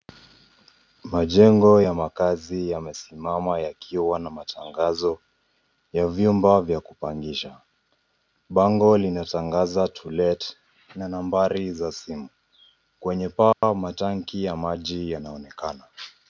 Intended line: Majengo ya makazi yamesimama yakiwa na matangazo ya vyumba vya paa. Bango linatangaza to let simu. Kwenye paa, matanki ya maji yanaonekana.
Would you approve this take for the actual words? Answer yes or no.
no